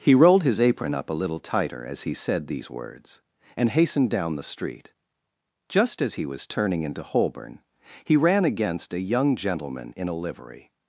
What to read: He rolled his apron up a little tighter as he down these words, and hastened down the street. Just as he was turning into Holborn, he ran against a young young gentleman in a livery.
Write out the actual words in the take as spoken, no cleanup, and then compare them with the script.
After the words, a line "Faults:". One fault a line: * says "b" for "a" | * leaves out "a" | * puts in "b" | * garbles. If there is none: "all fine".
He rolled his apron up a little tighter as he said these words, and hastened down the street. Just as he was turning into Holborn, he ran against a young gentleman in a livery.
Faults:
* says "said" for "down"
* leaves out "young"